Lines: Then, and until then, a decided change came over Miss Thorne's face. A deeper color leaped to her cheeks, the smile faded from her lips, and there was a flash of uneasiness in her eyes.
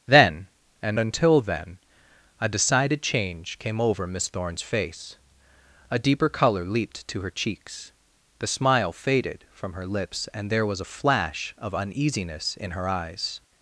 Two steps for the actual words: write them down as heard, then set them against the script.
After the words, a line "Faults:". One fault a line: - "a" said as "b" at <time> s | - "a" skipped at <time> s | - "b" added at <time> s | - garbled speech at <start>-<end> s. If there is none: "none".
Then, and until then, a decided change came over Miss Thorne's face. A deeper color leaped to her cheeks, the smile faded from her lips, and there was a flash of uneasiness in her eyes.
Faults:
none